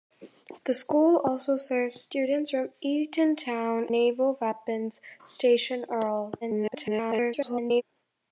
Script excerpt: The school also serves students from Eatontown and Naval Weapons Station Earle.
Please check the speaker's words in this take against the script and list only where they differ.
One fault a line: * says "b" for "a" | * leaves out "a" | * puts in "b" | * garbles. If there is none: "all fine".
* leaves out "and"
* garbles